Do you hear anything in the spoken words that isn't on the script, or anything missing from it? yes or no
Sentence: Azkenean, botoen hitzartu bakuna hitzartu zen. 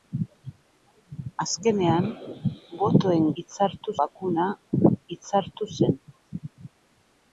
no